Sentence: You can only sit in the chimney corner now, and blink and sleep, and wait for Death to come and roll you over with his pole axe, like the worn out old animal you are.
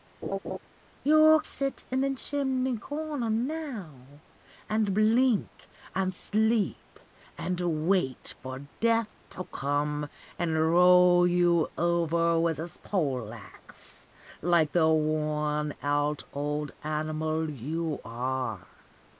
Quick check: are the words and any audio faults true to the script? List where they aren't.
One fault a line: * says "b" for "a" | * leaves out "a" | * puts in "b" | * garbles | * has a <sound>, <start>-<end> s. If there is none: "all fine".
* has a laugh, 0.2-0.6 s
* leaves out "can only"